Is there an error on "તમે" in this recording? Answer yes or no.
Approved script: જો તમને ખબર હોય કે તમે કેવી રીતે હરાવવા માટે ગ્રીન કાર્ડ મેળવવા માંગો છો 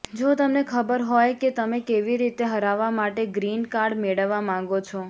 no